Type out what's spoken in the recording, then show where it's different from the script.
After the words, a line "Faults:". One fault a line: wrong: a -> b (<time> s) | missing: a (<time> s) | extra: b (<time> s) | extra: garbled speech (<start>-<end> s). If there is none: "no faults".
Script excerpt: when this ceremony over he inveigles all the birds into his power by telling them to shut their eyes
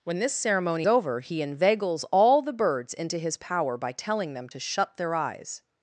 when this ceremony over he inveigles all the birds into his power by telling them to shut their eyes
Faults:
no faults